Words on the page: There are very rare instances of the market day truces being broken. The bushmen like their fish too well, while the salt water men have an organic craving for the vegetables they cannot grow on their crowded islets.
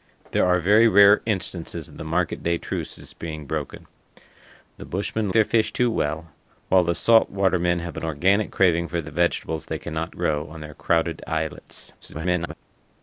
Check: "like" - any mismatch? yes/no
yes